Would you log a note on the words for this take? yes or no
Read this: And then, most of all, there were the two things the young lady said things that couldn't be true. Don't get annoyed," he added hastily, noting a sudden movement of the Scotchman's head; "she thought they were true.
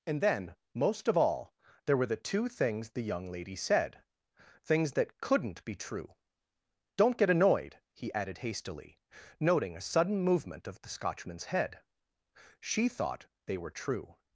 no